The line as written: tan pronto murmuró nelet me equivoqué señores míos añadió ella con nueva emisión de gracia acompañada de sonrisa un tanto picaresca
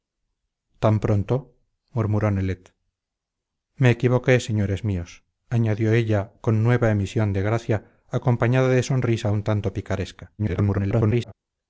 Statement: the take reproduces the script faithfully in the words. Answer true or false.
false